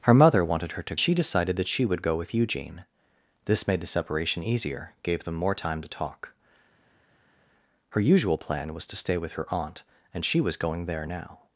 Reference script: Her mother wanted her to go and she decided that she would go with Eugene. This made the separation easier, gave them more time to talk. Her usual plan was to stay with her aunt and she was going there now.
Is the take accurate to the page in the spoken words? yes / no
no